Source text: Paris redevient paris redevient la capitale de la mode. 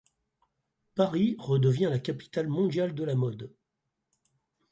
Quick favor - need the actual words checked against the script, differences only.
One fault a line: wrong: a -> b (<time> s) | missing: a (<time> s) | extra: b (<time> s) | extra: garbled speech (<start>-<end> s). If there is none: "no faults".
missing: paris redevient (1.9 s)
extra: mondiale (2.5 s)